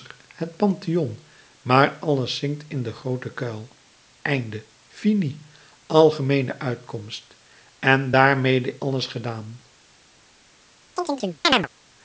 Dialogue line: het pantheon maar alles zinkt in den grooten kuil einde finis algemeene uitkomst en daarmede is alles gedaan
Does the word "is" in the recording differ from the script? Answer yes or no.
yes